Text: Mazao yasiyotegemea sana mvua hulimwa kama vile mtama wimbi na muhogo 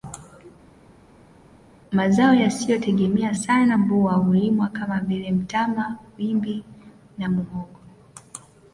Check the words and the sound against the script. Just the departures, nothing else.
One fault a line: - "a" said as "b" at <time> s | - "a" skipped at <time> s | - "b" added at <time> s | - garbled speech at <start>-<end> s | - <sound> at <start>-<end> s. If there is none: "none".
none